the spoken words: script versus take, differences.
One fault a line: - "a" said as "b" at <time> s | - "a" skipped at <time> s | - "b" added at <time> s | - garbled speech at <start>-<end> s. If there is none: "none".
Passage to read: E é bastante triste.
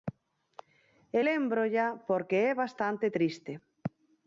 - "lémbrolla porque" added at 1.2 s